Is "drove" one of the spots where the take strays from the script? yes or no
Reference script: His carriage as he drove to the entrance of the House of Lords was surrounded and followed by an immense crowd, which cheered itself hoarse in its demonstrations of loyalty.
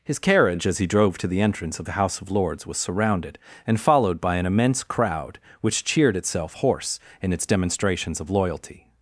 no